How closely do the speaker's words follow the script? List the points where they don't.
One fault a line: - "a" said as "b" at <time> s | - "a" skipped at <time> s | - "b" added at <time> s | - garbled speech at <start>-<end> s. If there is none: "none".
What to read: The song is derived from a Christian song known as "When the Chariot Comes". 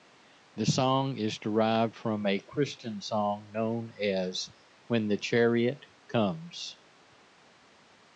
none